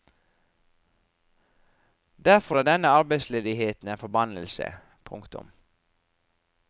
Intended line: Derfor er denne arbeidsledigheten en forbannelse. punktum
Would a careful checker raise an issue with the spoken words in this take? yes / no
no